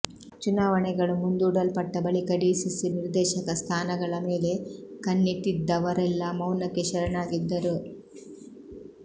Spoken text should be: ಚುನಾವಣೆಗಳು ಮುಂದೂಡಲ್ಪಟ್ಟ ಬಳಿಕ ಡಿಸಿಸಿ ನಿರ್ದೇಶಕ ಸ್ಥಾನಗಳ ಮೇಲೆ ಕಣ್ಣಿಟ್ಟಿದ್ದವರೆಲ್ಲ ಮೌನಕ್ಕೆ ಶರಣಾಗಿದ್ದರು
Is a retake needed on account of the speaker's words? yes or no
no